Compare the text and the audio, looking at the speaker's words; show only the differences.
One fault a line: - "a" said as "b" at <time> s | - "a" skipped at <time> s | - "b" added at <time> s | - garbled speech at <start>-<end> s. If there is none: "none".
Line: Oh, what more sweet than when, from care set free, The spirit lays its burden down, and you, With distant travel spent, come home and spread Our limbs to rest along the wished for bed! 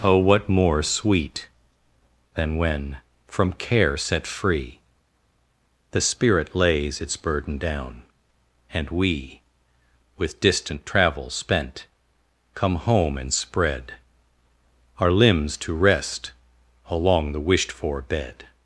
- "you" said as "we" at 8.9 s